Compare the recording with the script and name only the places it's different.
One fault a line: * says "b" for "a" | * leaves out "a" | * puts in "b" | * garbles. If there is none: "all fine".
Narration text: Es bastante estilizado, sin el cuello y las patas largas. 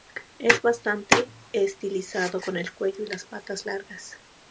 * says "con" for "sin"